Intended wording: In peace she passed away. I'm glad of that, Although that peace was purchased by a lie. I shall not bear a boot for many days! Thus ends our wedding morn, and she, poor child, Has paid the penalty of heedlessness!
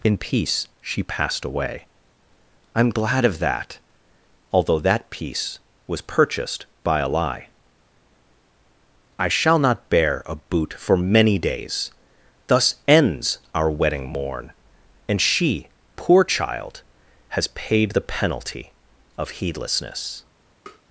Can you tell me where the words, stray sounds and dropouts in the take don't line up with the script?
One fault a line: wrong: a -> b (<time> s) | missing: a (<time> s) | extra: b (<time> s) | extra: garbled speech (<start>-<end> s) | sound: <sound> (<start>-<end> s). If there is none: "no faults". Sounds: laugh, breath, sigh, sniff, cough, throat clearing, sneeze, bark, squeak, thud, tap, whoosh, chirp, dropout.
sound: tap (20.7-20.8 s)